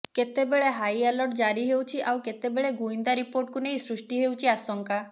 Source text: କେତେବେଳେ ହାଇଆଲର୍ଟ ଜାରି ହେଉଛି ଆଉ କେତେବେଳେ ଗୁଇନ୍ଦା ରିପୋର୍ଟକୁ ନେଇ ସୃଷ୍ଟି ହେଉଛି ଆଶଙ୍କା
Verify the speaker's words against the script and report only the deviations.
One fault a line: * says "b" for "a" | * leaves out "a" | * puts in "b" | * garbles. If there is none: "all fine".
all fine